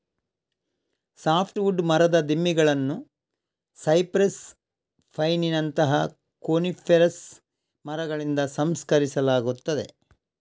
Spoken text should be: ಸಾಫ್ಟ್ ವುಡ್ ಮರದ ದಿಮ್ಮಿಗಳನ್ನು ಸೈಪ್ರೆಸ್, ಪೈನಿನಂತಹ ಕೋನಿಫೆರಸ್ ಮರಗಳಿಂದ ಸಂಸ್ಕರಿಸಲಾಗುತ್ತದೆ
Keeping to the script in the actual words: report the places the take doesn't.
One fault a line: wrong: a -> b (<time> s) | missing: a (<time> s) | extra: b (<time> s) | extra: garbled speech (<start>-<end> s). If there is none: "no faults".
no faults